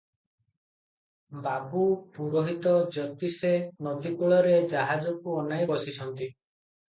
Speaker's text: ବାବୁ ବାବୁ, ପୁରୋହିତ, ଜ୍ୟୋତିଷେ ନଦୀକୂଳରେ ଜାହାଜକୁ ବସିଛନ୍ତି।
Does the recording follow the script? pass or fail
fail